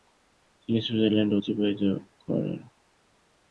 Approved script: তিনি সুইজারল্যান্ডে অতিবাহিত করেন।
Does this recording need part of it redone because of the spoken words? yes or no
no